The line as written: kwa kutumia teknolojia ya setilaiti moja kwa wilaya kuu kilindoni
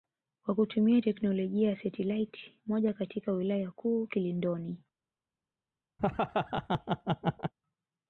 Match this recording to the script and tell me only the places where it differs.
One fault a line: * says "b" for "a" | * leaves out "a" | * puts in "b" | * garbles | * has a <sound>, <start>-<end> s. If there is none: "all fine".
* says "katika" for "kwa"
* has a laugh, 6.0-7.5 s